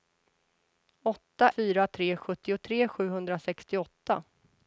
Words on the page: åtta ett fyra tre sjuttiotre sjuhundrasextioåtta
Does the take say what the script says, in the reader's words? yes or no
no